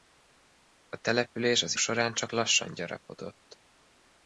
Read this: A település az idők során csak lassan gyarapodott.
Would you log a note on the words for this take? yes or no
yes